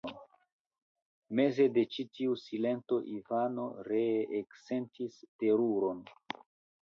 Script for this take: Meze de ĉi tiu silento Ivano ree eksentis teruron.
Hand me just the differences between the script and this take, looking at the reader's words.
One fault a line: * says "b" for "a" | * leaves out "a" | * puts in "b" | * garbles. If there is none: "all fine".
all fine